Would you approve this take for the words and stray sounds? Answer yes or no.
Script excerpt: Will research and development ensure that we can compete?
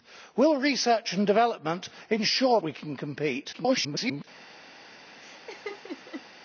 no